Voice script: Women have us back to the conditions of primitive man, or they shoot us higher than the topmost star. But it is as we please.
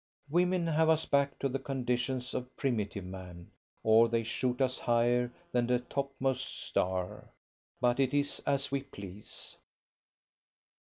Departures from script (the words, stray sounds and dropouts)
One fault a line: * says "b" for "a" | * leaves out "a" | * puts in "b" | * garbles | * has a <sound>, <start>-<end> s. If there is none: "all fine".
all fine